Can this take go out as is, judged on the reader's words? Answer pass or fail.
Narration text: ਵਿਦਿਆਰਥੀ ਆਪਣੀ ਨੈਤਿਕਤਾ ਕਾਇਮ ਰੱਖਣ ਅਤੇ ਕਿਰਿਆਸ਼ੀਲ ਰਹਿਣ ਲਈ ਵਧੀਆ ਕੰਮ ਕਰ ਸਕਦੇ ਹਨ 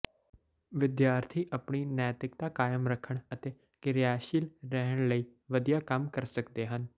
pass